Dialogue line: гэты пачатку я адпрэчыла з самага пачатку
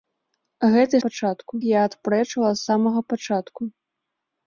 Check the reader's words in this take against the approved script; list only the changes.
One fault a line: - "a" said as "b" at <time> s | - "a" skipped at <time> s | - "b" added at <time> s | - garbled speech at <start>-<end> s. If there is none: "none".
none